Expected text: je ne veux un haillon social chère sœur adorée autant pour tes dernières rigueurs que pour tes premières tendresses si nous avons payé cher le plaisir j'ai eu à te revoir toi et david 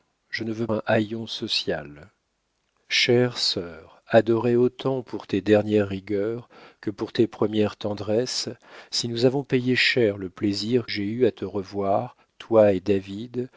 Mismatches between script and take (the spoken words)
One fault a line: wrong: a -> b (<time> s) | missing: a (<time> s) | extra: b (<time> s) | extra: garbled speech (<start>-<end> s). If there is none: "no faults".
no faults